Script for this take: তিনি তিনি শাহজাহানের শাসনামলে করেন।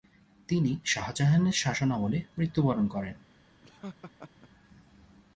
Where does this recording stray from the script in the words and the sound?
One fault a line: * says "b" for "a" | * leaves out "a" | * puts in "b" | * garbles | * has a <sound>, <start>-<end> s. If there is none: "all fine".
* leaves out "তিনি"
* puts in "মৃত্যুবরণ"
* has a laugh, 3.6-4.5 s